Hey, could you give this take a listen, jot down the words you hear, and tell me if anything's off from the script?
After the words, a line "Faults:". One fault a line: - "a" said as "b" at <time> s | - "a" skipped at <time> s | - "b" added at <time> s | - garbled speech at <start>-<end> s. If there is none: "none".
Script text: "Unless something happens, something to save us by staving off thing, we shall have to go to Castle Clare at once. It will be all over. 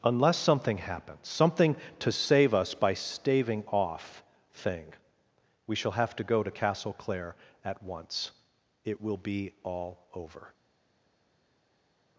"Unless something happens, something to save us by staving off thing, we shall have to go to Castle Clare at once. It will be all over.
Faults:
none